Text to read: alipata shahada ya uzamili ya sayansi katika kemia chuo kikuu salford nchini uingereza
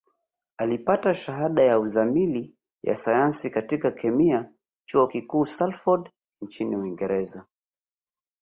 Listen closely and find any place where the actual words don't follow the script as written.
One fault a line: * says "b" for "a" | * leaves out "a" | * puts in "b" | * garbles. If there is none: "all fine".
all fine